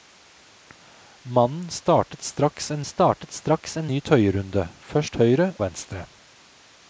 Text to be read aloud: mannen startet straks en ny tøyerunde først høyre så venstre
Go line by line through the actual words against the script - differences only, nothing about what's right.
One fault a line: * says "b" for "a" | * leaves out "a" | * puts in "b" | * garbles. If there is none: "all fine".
* puts in "startet straks en"
* leaves out "så"